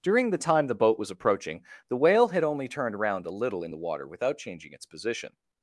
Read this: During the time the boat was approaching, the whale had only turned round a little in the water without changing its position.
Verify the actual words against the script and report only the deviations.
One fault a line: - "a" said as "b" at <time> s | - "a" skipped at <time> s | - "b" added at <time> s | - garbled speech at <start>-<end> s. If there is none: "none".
- "round" said as "around" at 3.0 s